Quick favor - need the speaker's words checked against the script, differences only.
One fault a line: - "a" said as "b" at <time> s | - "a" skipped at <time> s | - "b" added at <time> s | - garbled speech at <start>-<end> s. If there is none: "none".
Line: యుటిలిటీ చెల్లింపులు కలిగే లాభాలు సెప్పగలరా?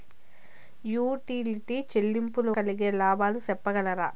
none